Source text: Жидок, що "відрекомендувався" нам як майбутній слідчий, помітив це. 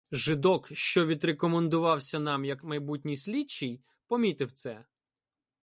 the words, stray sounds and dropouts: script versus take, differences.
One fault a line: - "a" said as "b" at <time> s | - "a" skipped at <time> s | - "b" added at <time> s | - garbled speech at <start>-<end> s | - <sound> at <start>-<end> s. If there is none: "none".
none